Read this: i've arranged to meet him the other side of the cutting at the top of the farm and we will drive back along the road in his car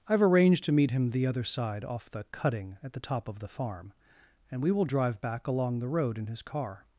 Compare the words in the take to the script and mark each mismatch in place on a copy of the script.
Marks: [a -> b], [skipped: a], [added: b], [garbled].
i've arranged to meet him the other side [of -> off] the cutting at the top of the farm and we will drive back along the road in his car